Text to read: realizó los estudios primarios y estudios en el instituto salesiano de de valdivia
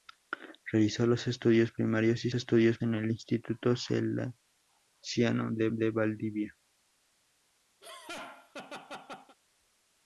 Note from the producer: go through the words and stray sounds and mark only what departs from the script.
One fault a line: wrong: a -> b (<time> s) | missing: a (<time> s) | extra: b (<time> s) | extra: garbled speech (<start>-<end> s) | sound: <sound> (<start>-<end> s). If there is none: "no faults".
sound: laugh (7.8-9.4 s)